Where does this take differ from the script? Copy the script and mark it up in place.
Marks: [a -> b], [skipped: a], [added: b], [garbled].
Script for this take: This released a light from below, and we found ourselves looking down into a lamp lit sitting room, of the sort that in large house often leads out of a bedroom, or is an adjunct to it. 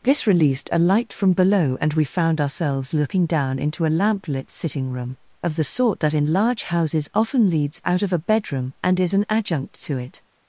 This released a light from below, and we found ourselves looking down into a lamp lit sitting room, of the sort that in large [house -> houses] often leads out of a bedroom, [or -> and] is an adjunct to it.